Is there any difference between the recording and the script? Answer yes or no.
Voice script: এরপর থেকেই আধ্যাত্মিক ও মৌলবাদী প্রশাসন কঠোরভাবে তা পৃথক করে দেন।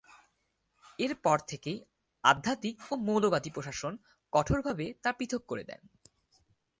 no